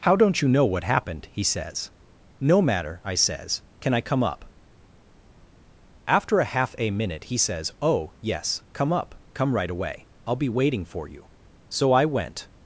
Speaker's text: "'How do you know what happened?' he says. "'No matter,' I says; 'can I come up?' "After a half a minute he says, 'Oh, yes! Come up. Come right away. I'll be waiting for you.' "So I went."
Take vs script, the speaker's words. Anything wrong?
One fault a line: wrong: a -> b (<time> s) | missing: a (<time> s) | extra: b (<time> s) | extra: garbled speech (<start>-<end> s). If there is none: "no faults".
wrong: do -> don't (0.1 s)